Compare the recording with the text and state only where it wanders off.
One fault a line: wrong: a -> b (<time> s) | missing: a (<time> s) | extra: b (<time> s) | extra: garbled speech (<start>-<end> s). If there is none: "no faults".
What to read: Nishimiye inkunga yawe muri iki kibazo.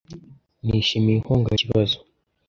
missing: yawe muri iki (1.5 s)